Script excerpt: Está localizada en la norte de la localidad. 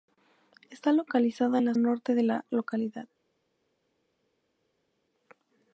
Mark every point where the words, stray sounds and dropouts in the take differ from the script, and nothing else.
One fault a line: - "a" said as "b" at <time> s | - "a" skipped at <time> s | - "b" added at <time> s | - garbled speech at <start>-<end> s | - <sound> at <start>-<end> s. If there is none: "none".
none